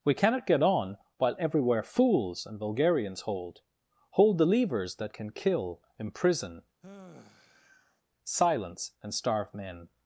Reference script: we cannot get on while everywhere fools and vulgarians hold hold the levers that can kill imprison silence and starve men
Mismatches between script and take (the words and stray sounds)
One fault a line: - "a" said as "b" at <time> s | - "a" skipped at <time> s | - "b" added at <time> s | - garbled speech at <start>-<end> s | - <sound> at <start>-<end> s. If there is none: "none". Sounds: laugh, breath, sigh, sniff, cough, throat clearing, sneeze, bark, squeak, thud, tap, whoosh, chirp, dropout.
- sigh at 6.8-8.0 s